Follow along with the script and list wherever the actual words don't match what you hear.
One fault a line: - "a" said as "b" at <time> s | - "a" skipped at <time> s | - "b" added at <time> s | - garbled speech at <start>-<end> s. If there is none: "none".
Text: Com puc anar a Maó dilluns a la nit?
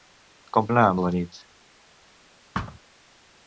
- "puc" skipped at 0.7 s
- "Maó dilluns" skipped at 1.0 s